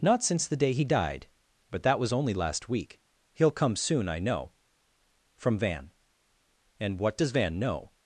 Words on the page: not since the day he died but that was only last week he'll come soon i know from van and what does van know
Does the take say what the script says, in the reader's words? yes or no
yes